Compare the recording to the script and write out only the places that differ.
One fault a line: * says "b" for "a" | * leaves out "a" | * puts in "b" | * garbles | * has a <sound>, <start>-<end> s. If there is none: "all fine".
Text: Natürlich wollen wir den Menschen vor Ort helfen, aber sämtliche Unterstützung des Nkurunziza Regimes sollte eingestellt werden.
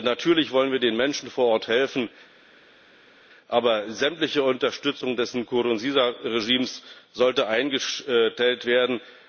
all fine